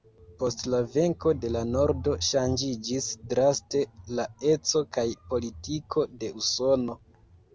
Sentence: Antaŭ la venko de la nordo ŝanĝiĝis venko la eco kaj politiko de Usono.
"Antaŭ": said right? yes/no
no